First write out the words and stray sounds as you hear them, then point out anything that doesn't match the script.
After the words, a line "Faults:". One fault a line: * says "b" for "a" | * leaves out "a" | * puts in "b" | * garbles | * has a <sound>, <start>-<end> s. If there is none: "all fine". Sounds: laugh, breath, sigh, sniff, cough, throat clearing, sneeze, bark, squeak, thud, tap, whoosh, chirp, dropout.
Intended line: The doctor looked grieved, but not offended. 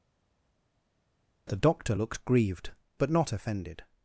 The doctor looked grieved, but not offended.
Faults:
all fine